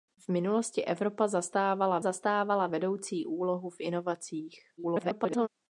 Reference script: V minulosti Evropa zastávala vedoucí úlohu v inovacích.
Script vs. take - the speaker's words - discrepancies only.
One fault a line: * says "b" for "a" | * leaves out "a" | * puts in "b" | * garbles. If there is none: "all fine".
* puts in "zastávala"
* garbles